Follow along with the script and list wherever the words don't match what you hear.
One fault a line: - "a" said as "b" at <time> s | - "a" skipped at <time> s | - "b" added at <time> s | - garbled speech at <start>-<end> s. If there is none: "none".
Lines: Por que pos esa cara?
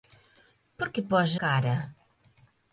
- "esa" skipped at 1.3 s